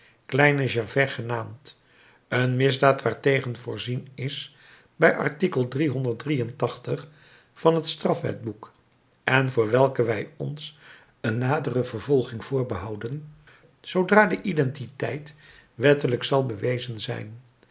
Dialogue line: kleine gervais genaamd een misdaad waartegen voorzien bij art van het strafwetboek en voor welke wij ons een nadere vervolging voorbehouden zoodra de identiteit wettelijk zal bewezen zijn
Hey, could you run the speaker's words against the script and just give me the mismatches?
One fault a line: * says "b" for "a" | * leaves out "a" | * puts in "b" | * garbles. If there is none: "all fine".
* puts in "is"